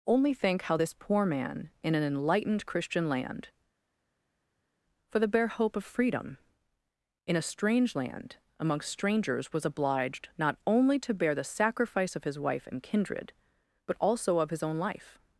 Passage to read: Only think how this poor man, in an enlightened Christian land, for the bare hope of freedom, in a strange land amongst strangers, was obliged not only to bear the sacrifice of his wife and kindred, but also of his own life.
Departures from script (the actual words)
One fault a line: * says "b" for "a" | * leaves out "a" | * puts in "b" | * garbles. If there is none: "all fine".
all fine